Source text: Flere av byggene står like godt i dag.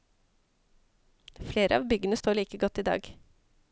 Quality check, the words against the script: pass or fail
pass